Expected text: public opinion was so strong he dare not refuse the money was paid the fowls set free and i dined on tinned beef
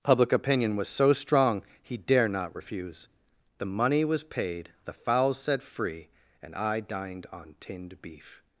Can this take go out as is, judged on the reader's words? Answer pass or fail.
pass